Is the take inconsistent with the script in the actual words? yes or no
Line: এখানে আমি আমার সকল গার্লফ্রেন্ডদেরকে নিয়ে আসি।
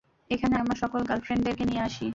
yes